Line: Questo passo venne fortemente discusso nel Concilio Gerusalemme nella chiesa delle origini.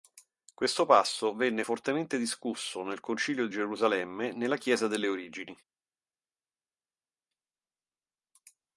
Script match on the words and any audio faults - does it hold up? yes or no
yes